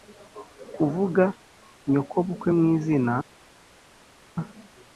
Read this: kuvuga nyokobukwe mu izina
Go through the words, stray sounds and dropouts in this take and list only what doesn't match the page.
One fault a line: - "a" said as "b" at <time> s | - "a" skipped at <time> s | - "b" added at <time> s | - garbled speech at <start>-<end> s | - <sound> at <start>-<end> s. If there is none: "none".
none